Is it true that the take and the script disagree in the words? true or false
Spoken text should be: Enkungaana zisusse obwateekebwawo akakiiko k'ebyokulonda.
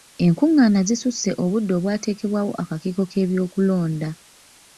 true